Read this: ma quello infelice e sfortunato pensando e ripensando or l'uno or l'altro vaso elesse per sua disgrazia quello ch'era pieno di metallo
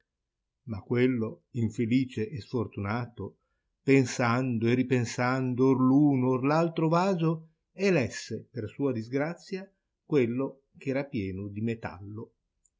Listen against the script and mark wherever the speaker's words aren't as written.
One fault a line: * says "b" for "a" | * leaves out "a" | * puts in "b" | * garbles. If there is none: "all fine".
all fine